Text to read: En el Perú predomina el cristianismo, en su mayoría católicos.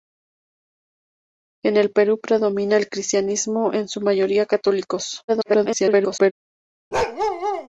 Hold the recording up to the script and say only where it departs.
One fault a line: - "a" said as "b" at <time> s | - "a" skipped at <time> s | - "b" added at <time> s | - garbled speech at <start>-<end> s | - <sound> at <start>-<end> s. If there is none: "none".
- garbled speech at 5.3-6.3 s
- bark at 6.9-7.7 s